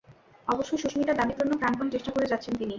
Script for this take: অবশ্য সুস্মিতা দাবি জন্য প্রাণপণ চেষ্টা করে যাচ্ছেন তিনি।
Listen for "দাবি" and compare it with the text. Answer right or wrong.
right